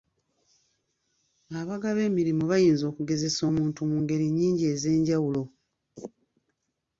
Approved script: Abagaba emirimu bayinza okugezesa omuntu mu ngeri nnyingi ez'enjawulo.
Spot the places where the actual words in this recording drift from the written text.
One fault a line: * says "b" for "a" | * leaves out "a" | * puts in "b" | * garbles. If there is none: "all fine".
all fine